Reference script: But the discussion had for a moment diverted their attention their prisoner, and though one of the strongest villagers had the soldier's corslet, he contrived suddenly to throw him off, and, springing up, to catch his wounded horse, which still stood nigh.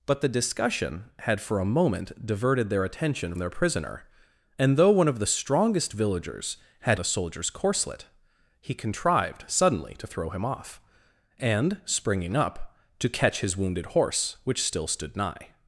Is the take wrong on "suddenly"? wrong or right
right